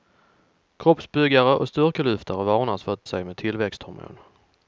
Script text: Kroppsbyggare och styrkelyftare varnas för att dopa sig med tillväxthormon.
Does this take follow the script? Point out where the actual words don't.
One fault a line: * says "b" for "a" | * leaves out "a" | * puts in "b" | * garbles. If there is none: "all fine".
* leaves out "dopa"